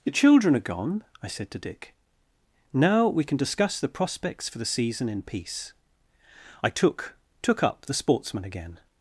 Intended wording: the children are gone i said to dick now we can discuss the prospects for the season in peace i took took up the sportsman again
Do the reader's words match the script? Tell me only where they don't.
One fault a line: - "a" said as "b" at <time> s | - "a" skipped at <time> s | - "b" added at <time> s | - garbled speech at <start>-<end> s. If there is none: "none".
none